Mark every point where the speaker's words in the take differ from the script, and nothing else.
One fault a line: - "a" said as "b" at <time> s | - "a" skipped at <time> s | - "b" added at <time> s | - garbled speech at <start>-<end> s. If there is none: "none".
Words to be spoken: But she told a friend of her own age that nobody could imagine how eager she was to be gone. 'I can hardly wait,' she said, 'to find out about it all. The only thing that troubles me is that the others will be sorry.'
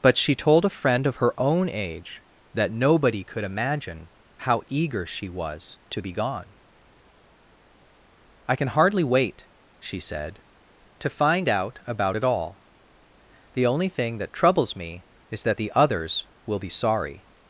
none